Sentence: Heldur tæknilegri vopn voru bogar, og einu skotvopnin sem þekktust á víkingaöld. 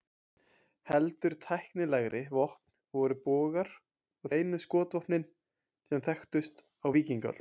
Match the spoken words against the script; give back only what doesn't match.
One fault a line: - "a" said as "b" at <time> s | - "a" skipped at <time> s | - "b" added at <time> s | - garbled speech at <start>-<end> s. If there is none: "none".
none